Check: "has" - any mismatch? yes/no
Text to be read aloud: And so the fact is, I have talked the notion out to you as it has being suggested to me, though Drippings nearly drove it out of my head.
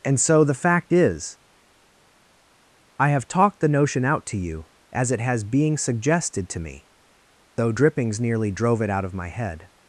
no